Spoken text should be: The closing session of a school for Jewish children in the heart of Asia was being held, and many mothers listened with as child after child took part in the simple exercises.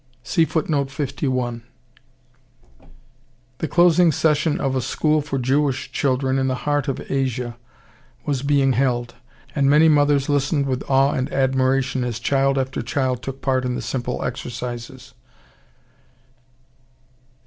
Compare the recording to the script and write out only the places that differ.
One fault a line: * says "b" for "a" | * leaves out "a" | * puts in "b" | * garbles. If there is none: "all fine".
* puts in "awe and admiration"